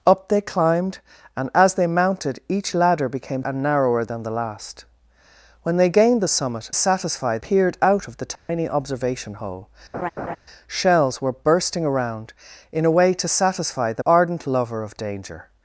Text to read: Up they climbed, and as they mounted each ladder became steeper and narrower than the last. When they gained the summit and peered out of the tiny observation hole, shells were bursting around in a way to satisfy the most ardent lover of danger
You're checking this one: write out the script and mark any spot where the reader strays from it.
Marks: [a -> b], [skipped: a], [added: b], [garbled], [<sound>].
Up they climbed, and as they mounted each ladder became [skipped: steeper] and narrower than the last. When they gained the summit [and -> satisfy] peered out of the tiny [dropout] observation hole, [laugh] shells were bursting around in a way to satisfy the [skipped: most] ardent lover of danger